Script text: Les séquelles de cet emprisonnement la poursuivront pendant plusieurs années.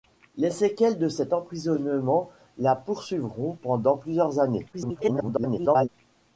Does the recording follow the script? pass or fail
fail